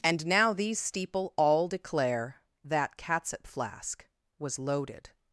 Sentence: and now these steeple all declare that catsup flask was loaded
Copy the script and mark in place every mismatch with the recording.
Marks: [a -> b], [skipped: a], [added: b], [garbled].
and now these steeple all declare that catsup flask was loaded